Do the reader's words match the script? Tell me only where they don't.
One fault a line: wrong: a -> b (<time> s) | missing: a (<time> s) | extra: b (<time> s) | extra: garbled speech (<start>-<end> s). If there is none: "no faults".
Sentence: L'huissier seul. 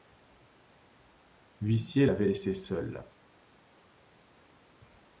extra: l'avait laissé (2.0 s)